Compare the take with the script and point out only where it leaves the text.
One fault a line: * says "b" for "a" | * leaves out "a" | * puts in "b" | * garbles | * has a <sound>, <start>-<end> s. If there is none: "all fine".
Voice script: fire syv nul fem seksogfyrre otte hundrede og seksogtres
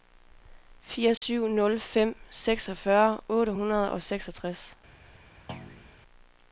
* has a dropout, 1.2-1.2 s
* has a thud, 5.5-5.9 s